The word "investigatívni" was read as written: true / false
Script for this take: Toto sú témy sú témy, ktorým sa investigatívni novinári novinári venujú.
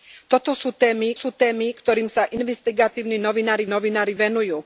true